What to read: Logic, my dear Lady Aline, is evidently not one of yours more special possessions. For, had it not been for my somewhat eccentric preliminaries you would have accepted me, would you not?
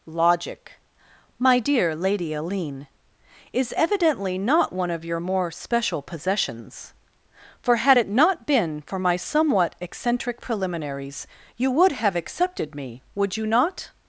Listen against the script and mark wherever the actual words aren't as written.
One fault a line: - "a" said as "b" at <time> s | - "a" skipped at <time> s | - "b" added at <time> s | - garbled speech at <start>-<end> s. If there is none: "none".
- "yours" said as "your" at 5.0 s